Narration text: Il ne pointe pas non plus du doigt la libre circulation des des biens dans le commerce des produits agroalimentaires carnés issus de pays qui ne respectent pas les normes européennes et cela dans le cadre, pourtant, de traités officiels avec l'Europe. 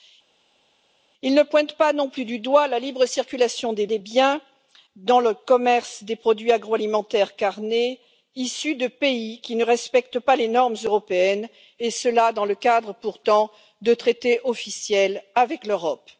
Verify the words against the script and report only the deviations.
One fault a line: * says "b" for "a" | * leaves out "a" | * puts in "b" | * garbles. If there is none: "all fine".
all fine